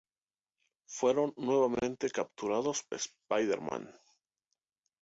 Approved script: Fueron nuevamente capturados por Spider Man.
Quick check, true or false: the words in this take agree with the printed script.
false